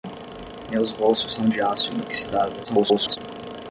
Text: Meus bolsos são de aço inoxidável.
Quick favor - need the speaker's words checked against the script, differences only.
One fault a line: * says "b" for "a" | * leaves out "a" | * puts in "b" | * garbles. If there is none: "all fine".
* garbles